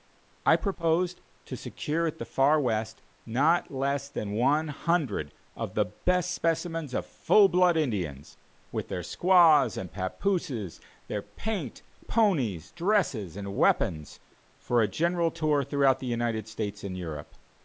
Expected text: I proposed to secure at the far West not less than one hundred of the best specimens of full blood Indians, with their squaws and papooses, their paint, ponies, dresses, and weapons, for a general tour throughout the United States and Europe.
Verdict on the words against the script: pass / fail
pass